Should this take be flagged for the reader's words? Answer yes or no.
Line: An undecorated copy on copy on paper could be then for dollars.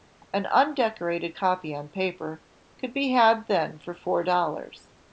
yes